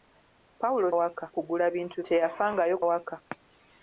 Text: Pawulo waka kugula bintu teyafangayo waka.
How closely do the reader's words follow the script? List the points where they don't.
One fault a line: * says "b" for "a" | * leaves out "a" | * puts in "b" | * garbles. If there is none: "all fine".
all fine